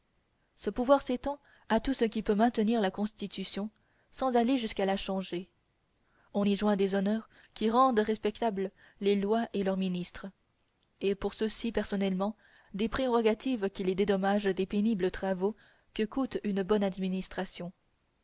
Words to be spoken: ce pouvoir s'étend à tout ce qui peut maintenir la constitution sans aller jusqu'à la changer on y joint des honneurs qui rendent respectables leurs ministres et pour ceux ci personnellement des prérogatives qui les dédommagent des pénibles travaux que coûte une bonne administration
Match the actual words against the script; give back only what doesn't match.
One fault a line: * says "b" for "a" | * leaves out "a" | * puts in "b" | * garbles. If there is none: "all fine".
* puts in "les lois et"